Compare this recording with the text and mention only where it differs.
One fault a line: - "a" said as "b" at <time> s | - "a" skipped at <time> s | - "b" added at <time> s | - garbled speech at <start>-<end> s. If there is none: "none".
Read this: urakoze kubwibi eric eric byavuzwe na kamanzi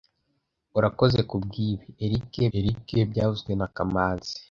none